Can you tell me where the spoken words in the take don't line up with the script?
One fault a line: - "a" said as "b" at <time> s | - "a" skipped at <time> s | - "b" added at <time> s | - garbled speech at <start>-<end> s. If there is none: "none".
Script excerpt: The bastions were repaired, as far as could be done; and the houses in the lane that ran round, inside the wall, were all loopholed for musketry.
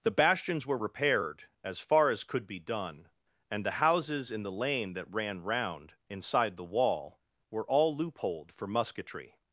none